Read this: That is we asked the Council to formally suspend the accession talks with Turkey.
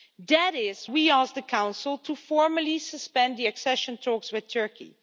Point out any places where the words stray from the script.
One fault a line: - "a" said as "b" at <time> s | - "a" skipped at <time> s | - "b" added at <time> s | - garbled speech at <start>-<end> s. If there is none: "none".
none